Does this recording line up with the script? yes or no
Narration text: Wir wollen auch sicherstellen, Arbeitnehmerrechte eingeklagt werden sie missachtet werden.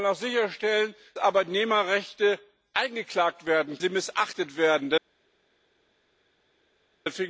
yes